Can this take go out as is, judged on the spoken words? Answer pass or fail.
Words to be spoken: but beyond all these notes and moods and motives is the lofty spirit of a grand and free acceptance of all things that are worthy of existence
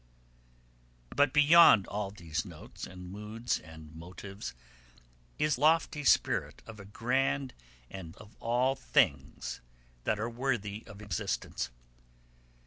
fail